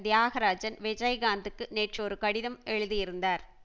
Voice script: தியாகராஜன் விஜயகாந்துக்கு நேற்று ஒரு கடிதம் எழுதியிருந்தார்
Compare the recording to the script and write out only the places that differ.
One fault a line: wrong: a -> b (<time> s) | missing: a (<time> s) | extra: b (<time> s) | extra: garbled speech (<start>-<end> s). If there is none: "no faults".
no faults